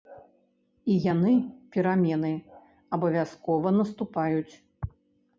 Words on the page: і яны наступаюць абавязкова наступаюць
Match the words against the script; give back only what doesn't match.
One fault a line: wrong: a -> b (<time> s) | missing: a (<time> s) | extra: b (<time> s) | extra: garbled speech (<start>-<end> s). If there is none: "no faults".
wrong: наступаюць -> перамены (1.8 s)